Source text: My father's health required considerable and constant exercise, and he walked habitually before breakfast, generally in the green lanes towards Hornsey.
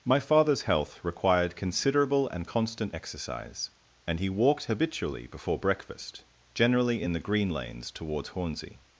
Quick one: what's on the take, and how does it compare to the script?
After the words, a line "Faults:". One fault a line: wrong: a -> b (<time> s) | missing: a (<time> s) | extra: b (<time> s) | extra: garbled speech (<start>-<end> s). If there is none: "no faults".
My father's health required considerable and constant exercise, and he walked habitually before breakfast, generally in the green lanes towards Hornsey.
Faults:
no faults